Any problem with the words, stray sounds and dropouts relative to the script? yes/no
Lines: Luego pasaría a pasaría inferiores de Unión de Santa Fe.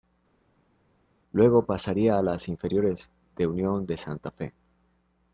yes